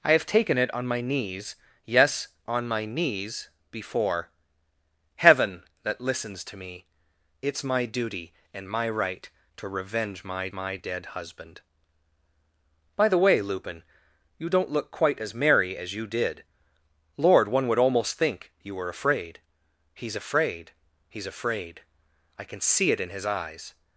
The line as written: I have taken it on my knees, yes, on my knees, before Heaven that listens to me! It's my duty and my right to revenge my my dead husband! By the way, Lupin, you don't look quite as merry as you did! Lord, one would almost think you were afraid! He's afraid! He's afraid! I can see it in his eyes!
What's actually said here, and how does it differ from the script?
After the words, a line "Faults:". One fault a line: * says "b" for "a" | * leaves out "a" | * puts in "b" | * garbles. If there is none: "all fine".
I have taken it on my knees, yes, on my knees, before Heaven that listens to me! It's my duty and my right to revenge my my dead husband! By the way, Lupin, you don't look quite as merry as you did! Lord, one would almost think you were afraid! He's afraid! He's afraid! I can see it in his eyes!
Faults:
all fine